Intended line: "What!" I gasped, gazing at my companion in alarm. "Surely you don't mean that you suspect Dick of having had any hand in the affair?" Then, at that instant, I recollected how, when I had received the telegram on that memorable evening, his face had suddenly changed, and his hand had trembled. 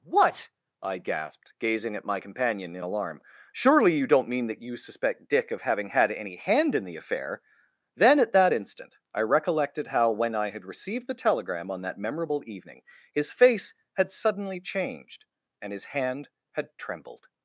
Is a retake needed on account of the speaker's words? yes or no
no